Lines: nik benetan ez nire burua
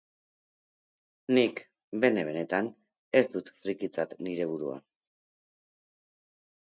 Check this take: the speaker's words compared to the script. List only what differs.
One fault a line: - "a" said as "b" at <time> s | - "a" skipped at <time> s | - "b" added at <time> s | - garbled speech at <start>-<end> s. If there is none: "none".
- "bene" added at 2.0 s
- "dut frikitzat" added at 3.4 s